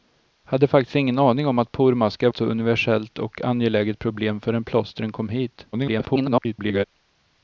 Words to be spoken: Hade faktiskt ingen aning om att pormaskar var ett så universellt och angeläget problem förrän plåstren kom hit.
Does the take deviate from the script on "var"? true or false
true